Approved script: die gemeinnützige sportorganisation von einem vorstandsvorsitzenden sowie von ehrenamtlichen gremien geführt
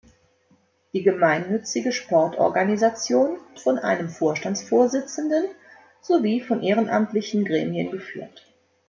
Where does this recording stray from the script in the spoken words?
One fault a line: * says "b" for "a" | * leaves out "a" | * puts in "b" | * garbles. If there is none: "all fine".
all fine